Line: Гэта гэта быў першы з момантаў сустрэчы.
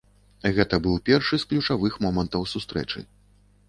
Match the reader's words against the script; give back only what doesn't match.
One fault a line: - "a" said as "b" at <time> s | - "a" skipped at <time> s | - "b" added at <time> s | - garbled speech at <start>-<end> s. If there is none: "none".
- "гэта" skipped at 0.8 s
- "ключавых" added at 1.5 s